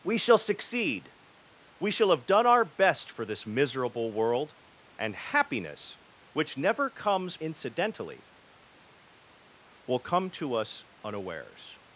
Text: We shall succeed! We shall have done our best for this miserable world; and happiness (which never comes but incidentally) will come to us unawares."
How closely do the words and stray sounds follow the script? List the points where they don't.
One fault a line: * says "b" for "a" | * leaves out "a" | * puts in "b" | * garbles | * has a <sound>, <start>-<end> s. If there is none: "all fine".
* leaves out "but"